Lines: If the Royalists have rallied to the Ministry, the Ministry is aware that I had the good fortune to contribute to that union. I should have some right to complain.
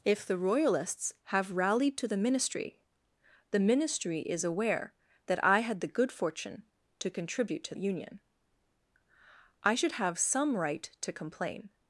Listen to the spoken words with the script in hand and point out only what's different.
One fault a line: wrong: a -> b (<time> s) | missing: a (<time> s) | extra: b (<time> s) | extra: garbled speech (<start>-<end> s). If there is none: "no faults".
missing: that (7.8 s)